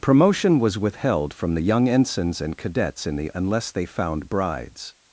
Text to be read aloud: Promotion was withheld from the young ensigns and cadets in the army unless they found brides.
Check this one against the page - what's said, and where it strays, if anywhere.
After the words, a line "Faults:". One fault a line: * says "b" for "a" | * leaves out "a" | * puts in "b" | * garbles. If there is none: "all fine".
Promotion was withheld from the young ensigns and cadets in the unless they found brides.
Faults:
* leaves out "army"